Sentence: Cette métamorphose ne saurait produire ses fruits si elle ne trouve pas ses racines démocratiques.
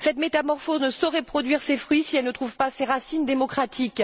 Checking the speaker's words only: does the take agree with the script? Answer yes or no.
yes